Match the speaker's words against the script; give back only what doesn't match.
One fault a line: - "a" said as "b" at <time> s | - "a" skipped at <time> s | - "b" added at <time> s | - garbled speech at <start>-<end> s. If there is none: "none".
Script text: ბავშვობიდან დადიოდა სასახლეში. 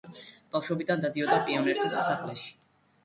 - "პიონერთა" added at 1.5 s